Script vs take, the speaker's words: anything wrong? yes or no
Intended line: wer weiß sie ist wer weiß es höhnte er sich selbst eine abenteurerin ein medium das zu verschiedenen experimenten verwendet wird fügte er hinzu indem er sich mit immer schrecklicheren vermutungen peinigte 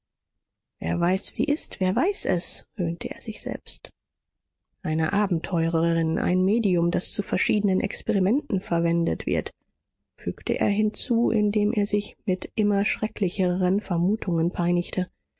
no